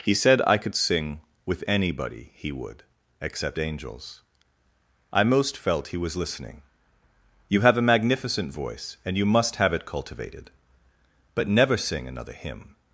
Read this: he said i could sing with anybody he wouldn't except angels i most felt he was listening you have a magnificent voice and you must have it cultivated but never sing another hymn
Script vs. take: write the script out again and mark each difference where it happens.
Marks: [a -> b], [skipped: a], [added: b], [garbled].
he said i could sing with anybody he [wouldn't -> would] except angels i most felt he was listening you have a magnificent voice and you must have it cultivated but never sing another hymn